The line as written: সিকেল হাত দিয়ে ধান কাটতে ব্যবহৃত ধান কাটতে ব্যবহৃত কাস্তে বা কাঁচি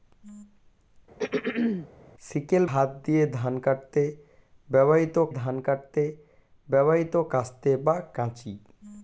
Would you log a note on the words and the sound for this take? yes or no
yes